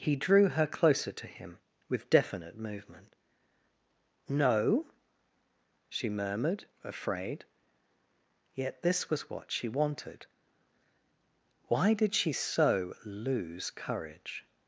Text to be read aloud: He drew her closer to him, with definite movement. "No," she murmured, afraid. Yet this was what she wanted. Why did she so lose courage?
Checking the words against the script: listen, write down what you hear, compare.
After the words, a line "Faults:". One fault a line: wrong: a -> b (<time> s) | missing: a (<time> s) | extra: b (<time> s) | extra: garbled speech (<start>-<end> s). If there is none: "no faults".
He drew her closer to him, with definite movement. "No," she murmured, afraid. Yet this was what she wanted. Why did she so lose courage?
Faults:
no faults